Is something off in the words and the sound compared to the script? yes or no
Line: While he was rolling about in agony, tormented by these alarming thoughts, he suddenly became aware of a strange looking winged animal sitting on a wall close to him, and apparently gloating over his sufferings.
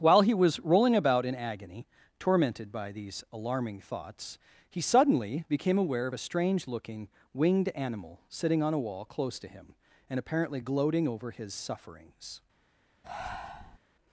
yes